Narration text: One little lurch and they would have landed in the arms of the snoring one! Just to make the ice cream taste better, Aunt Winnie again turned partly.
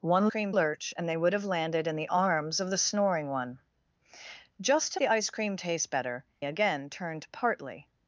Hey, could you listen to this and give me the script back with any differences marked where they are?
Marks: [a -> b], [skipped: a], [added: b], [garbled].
One [little -> cream] lurch and they would have landed in the arms of the snoring one! Just to [skipped: make] the ice cream taste better, [skipped: Aunt Winnie] again turned partly.